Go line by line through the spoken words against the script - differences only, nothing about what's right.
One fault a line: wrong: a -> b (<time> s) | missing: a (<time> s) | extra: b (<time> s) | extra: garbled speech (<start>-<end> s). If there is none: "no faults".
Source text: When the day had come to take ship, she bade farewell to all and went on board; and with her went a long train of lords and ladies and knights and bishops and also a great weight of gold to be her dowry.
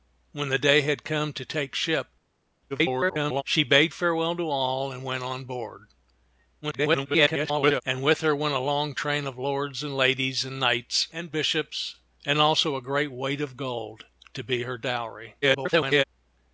extra: garbled speech (2.7-3.4 s)
extra: garbled speech (6.6-7.8 s)
extra: garbled speech (15.4-16.0 s)